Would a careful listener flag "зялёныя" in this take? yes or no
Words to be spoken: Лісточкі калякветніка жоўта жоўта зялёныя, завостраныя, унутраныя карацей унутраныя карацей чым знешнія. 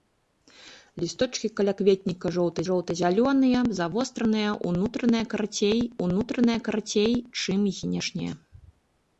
no